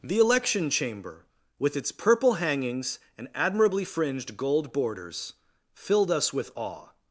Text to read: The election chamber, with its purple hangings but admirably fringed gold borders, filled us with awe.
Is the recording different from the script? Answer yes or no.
yes